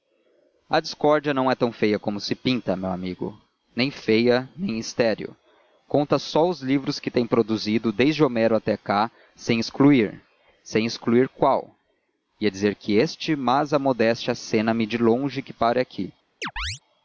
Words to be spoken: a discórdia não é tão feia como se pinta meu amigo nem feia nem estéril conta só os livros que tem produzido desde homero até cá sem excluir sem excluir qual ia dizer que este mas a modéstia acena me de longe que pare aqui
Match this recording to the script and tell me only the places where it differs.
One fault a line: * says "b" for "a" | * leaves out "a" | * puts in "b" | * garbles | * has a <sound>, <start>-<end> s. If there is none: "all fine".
* has a chirp, 16.4-16.8 s